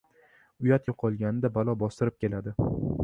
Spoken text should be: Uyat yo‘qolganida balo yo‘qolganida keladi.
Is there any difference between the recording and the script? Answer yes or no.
yes